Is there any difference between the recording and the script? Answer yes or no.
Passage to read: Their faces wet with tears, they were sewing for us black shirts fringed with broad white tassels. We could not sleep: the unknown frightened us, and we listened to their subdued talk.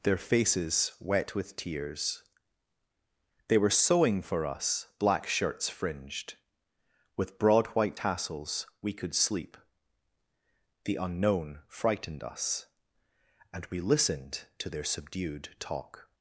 yes